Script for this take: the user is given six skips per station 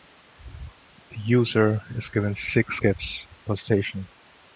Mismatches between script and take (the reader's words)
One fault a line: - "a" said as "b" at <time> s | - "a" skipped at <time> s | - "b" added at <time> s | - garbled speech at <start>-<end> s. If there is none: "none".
none